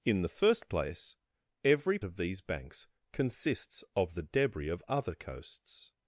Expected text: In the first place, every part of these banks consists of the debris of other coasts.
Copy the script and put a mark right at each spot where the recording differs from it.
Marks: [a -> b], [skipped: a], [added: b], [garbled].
In the first place, every [skipped: part] of these banks consists of the debris of other coasts.